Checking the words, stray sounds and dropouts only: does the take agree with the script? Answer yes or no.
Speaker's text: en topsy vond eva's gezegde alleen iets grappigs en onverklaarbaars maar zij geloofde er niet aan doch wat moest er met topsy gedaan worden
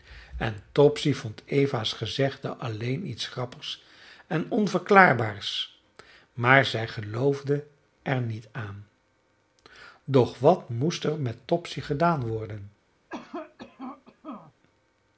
no